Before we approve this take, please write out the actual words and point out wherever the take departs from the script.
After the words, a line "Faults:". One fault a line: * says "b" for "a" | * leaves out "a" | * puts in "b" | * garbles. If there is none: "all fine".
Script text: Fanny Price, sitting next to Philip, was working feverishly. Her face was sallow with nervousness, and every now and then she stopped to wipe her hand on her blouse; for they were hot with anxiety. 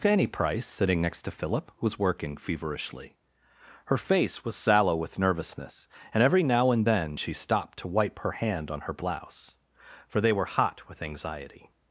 Fanny Price, sitting next to Philip, was working feverishly. Her face was sallow with nervousness, and every now and then she stopped to wipe her hand on her blouse; for they were hot with anxiety.
Faults:
all fine